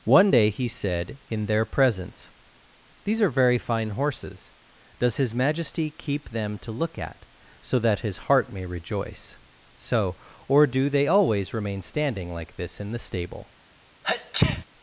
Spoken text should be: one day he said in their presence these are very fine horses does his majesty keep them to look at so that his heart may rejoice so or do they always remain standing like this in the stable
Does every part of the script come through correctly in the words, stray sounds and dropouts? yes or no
no